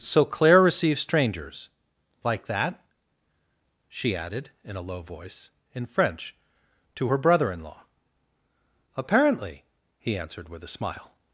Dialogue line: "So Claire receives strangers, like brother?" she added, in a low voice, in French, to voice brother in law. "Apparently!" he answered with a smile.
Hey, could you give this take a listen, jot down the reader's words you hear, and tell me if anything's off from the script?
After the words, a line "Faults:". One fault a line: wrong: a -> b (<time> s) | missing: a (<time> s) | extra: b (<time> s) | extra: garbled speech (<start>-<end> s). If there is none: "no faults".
"So Claire receives strangers, like that?" she added, in a low voice, in French, to her brother in law. "Apparently!" he answered with a smile.
Faults:
wrong: brother -> that (2.5 s)
wrong: voice -> her (7.1 s)